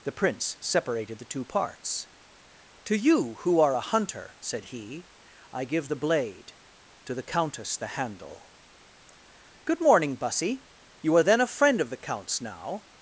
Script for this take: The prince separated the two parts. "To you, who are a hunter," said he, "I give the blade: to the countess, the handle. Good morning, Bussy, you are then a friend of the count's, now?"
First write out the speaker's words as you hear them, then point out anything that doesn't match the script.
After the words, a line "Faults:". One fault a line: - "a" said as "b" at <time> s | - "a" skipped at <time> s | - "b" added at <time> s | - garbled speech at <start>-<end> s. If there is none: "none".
The prince separated the two parts. "To you, who are a hunter," said he, "I give the blade: to the countess, the handle. Good morning, Bussy, you are then a friend of the count's, now?"
Faults:
none